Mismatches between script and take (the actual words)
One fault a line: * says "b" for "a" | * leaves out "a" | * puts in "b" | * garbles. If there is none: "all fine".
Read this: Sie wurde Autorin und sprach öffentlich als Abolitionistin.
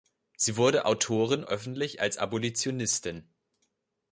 * leaves out "und sprach"